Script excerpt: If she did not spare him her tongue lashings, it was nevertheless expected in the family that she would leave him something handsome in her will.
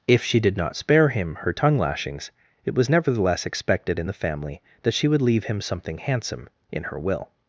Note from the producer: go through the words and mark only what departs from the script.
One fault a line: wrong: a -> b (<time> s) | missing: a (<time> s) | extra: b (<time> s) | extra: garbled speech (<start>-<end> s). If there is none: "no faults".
no faults